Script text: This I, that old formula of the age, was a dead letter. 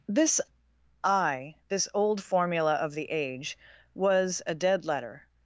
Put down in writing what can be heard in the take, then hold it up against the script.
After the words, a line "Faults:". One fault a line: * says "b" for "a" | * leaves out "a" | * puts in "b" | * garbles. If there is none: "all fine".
This I, this old formula of the age, was a dead letter.
Faults:
* says "this" for "that"